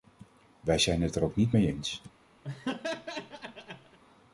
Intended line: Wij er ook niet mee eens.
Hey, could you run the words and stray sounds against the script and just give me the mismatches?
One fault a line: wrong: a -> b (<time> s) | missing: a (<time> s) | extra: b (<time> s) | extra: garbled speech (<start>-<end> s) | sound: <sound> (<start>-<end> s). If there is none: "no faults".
extra: zijn het (0.8 s)
sound: laugh (2.4-4.0 s)